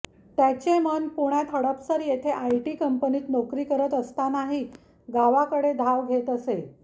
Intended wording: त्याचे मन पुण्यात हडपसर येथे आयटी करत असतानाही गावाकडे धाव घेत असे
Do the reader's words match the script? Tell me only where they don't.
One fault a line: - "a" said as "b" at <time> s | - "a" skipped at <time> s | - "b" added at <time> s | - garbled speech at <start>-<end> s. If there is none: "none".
- "कंपनीत नोकरी" added at 2.8 s